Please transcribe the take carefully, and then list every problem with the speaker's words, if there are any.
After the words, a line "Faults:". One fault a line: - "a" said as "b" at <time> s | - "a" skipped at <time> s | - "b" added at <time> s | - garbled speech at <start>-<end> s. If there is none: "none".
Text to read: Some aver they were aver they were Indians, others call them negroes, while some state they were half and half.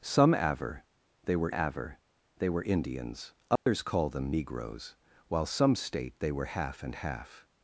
Some aver they were aver they were Indians, others call them negroes, while some state they were half and half.
Faults:
none